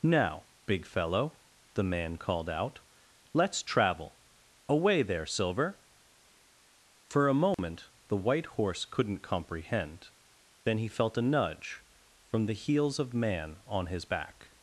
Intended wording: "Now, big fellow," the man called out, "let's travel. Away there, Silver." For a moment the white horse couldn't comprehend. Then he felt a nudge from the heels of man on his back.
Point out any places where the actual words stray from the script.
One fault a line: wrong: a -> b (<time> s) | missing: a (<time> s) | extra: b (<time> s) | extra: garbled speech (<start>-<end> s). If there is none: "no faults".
no faults